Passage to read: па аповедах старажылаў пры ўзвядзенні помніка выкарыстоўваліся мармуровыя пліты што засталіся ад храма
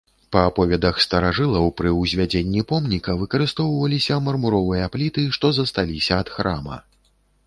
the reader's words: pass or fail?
pass